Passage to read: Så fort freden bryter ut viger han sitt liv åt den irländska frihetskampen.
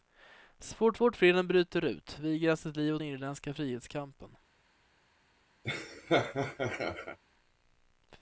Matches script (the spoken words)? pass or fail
fail